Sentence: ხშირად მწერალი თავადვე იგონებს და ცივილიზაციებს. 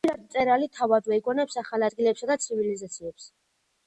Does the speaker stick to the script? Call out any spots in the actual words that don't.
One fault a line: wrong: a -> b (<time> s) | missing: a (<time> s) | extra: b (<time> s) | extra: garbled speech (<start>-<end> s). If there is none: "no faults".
extra: ახალ ადგილებსა (1.6 s)